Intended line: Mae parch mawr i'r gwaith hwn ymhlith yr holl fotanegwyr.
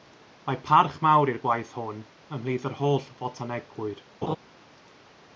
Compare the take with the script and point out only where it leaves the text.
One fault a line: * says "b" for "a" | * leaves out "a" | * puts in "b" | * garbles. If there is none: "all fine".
all fine